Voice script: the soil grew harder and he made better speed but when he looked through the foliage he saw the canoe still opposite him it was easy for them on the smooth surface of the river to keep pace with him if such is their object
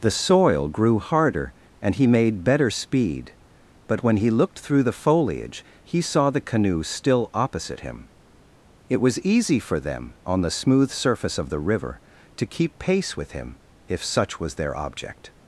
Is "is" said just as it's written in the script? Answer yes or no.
no